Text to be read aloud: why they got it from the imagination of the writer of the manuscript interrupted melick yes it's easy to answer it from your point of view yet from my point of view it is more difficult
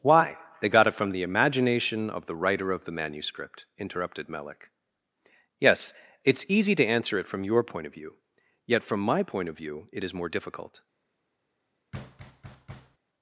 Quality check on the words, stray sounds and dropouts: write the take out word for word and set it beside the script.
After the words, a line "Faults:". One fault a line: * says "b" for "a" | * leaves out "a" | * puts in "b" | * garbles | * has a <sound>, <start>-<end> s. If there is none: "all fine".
why they got it from the imagination of the writer of the manuscript interrupted melick yes it's easy to answer it from your point of view yet from my point of view it is more difficult
Faults:
* has a thud, 11.9-13.0 s